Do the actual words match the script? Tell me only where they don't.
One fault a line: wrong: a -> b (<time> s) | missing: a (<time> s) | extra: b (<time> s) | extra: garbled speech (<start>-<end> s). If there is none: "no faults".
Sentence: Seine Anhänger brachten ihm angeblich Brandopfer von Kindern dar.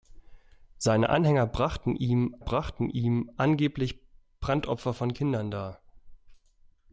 extra: brachten ihm (2.4 s)